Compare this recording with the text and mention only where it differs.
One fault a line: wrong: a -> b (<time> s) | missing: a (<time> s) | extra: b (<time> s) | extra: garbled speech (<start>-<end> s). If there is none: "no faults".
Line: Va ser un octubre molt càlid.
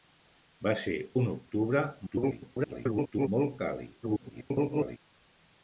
extra: garbled speech (2.1-3.3 s)
extra: garbled speech (4.0-5.0 s)